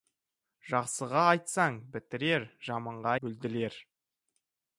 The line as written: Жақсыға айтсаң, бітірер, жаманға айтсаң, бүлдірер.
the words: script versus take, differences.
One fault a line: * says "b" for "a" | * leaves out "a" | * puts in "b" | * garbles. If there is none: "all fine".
* leaves out "айтсаң"